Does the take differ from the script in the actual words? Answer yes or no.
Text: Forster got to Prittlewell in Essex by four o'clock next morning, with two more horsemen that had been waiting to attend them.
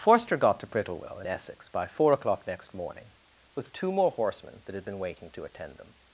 no